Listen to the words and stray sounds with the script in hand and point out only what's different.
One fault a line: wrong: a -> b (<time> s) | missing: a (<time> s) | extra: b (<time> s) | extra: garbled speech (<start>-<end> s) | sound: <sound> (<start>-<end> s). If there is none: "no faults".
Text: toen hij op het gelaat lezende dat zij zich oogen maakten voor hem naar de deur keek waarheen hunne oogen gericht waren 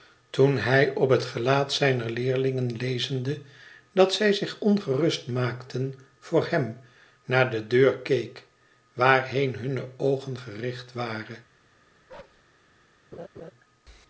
extra: zijner leerlingen (1.7 s)
wrong: oogen -> ongerust (4.6 s)
sound: bark (12.1-12.4 s)
sound: laugh (13.1-13.5 s)